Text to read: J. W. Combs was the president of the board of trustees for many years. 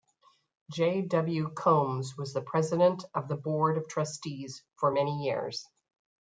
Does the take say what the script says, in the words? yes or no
yes